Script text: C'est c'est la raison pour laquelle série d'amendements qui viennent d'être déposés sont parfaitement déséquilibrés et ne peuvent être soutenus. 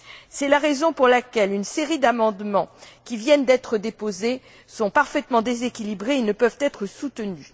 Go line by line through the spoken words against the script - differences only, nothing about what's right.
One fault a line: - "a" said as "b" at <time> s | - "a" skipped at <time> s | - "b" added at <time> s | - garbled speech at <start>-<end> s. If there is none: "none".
- "c'est" skipped at 0.5 s
- "une" added at 1.5 s